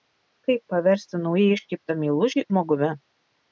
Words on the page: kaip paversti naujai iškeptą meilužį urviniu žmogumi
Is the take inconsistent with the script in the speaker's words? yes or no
yes